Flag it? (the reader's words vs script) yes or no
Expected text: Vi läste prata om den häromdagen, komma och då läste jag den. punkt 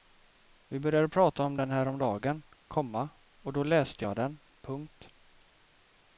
yes